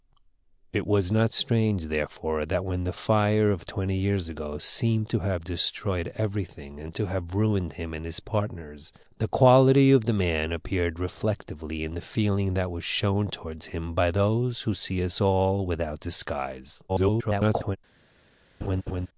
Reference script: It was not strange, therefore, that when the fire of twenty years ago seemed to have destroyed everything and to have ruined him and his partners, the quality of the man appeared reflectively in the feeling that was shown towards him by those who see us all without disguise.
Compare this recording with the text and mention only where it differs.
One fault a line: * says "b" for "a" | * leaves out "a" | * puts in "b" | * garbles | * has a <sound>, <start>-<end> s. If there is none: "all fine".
* garbles
* has a laugh, 18.6-19.1 s